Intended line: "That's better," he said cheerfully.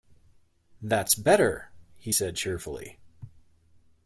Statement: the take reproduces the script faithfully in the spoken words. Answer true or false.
true